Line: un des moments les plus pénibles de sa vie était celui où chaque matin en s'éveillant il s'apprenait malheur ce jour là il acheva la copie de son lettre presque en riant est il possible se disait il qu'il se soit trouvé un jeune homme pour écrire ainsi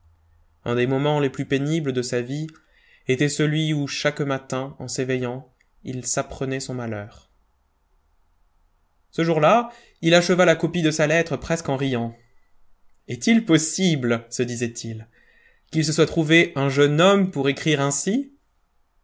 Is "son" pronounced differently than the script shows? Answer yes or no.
yes